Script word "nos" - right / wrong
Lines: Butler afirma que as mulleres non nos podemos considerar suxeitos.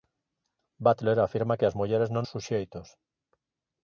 wrong